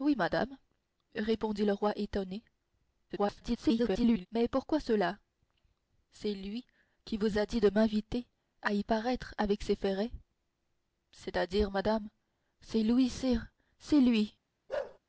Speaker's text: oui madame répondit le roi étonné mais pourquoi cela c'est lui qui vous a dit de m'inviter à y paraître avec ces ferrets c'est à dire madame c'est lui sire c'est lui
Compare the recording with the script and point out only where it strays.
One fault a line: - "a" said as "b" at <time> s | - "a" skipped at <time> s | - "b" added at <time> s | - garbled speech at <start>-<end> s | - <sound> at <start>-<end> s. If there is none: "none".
- garbled speech at 3.1-4.3 s
- bark at 14.7-15.0 s